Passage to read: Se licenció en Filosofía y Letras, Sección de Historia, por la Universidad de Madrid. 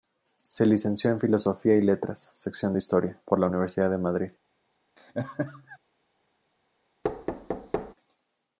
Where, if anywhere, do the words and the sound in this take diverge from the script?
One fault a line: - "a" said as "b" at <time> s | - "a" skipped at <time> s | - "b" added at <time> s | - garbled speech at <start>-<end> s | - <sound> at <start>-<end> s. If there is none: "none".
- laugh at 5.0-5.8 s
- thud at 7.0-7.9 s